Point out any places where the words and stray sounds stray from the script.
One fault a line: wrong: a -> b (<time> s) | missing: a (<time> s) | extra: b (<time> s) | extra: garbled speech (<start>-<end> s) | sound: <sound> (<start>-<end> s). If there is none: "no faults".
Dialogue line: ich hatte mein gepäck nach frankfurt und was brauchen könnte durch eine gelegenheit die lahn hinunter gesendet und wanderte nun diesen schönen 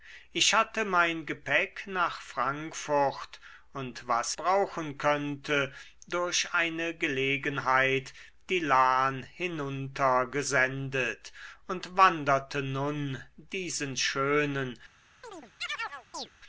sound: chirp (15.2-16.3 s)